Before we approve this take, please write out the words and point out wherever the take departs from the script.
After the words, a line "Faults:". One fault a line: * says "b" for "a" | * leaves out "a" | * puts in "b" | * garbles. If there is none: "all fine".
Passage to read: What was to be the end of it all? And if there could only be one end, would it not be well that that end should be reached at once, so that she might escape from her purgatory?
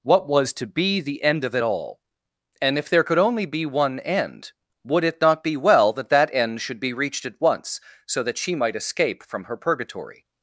What was to be the end of it all? And if there could only be one end, would it not be well that that end should be reached at once, so that she might escape from her purgatory?
Faults:
all fine